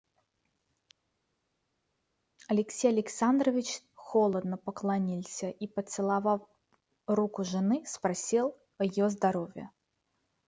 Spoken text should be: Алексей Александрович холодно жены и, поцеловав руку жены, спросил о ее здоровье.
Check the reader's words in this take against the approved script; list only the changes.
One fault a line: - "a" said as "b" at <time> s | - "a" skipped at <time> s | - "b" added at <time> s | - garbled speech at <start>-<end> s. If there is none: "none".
- "жены" said as "поклонился" at 4.6 s